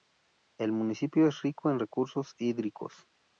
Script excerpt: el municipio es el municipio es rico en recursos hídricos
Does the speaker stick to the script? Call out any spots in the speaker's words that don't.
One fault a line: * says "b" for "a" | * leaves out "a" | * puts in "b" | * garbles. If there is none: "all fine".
* leaves out "el municipio es"